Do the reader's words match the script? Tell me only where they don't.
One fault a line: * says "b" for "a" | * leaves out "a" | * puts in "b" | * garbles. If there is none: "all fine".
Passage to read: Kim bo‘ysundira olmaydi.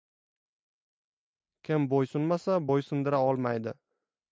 * puts in "bo‘ysunmasa"